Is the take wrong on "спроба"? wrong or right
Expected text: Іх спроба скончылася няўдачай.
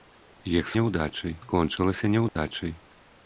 wrong